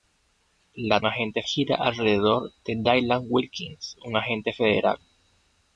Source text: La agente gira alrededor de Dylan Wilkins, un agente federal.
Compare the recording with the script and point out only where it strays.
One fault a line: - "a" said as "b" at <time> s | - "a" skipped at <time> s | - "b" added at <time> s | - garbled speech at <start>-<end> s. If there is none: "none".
none